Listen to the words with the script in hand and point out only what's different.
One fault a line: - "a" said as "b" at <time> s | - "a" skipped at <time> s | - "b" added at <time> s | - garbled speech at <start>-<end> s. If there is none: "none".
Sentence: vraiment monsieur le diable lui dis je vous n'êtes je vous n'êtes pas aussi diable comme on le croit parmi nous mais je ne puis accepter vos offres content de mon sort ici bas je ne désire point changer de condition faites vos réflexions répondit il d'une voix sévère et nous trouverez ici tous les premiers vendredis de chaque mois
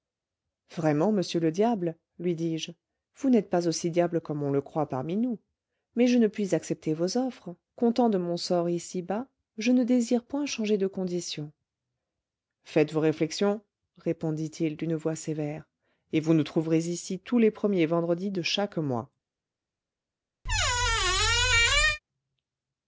- "je vous n'êtes" skipped at 3.5 s
- "vous" added at 16.2 s